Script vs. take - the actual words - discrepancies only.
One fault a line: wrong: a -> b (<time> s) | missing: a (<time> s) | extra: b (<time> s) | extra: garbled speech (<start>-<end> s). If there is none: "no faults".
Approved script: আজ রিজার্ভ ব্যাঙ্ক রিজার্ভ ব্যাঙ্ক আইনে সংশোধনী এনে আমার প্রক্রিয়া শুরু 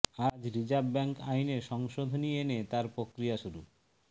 missing: রিজার্ভ ব্যাঙ্ক (1.1 s)
wrong: আমার -> তার (2.7 s)